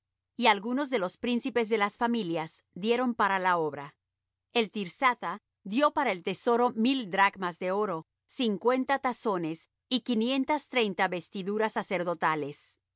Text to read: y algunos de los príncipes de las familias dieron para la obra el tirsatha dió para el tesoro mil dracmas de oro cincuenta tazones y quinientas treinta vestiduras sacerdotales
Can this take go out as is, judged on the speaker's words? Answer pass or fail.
pass